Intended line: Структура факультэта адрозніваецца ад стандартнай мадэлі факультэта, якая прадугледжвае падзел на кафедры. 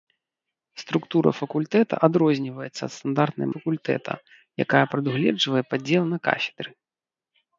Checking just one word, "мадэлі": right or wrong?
wrong